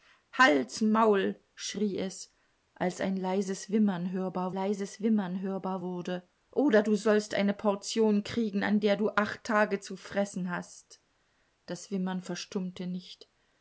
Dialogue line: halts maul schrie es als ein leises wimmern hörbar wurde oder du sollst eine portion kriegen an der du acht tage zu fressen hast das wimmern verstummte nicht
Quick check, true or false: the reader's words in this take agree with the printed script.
false